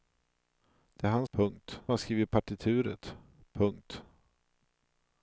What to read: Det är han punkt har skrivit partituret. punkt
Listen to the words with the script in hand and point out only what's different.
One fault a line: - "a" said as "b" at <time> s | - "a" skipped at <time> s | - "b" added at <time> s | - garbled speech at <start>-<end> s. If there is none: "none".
none